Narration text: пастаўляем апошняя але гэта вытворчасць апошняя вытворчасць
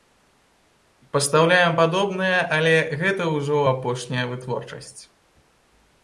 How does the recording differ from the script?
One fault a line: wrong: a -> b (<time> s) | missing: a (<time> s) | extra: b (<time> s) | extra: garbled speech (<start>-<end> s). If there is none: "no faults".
wrong: апошняя -> падобнае (1.8 s)
wrong: вытворчасць -> ўжо (3.4 s)